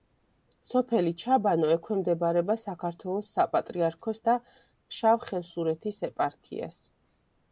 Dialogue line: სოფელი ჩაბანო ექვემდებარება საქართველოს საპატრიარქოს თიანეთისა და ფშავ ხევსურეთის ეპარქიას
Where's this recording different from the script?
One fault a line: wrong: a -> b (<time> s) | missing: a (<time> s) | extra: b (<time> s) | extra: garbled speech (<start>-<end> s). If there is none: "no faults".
missing: თიანეთისა (4.2 s)